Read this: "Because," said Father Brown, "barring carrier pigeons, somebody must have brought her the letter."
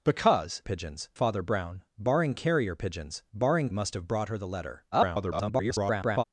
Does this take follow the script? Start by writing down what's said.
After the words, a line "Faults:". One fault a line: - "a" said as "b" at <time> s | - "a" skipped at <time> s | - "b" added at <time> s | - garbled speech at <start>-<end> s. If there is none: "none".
"Because," pigeons Father Brown, "barring carrier pigeons, barring must have brought her the letter." [garbled]
Faults:
- "said" said as "pigeons" at 0.6 s
- "somebody" said as "barring" at 3.3 s
- garbled speech at 4.9-6.2 s